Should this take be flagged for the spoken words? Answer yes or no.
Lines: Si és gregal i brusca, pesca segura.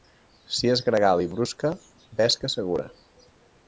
no